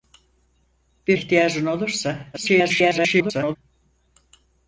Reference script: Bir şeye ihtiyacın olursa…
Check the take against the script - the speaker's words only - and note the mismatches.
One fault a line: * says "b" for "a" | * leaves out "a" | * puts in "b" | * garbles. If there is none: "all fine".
* leaves out "şeye"
* garbles